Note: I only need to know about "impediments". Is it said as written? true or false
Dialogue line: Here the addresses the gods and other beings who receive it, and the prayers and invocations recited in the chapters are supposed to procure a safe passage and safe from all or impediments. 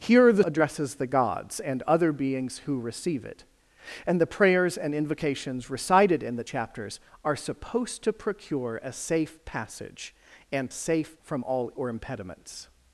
true